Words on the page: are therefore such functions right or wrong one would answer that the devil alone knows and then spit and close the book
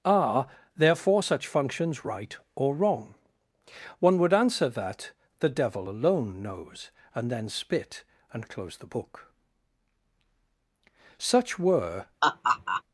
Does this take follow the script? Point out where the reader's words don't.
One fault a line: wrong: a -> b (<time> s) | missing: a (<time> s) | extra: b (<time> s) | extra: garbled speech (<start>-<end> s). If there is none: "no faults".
extra: such were (11.2 s)